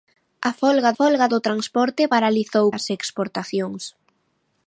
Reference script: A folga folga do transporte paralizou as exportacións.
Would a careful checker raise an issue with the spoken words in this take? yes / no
no